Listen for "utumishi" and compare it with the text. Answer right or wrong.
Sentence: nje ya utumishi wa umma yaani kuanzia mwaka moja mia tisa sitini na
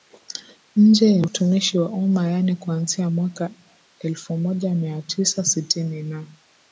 right